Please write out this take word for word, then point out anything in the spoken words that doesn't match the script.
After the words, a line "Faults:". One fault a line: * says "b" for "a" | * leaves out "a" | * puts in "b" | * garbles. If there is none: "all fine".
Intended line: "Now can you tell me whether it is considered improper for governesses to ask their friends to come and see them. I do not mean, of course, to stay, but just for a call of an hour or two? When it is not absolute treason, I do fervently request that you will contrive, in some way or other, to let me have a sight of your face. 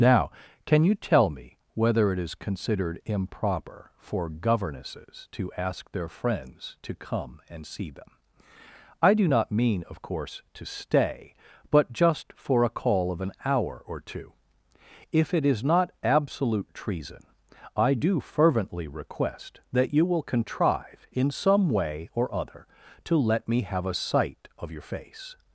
"Now can you tell me whether it is considered improper for governesses to ask their friends to come and see them. I do not mean, of course, to stay, but just for a call of an hour or two? If it is not absolute treason, I do fervently request that you will contrive, in some way or other, to let me have a sight of your face.
Faults:
* says "If" for "When"